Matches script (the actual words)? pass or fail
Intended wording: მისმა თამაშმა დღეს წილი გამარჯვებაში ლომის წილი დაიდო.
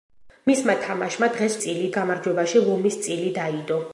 pass